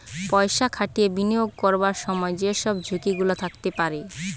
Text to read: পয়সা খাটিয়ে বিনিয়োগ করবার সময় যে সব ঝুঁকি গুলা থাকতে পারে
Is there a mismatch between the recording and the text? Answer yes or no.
no